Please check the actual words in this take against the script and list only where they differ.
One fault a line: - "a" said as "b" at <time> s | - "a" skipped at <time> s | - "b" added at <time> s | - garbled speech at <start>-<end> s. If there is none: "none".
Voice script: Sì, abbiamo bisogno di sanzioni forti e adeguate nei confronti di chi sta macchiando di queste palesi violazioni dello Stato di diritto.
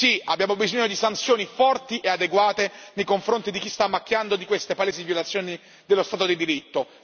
none